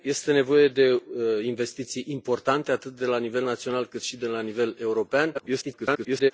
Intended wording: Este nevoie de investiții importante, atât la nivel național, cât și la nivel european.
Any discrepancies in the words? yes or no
yes